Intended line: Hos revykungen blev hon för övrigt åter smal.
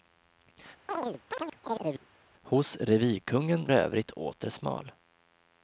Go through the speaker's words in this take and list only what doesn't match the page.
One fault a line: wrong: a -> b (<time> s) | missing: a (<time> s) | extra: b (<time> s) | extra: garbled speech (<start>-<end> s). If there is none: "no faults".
missing: blev hon för (3.7 s)